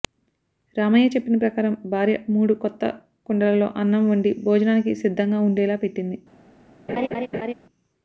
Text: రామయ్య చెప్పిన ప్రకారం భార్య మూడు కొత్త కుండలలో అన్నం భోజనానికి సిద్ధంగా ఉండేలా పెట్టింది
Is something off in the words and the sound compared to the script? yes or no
yes